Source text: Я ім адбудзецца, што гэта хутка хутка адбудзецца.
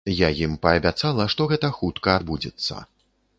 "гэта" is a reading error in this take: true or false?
false